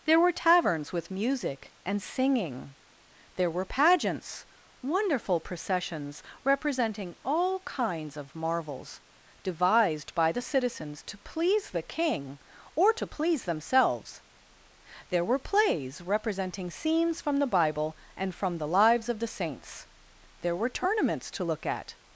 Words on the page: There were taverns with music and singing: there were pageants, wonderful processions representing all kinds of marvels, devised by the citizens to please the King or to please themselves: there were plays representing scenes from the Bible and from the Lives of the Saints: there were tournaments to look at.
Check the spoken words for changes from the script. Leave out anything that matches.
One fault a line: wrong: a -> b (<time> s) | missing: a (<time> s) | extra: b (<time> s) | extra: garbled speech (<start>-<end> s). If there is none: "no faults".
no faults